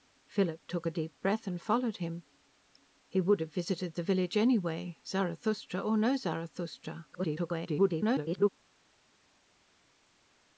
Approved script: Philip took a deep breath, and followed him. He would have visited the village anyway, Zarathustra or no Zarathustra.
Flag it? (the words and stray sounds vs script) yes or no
yes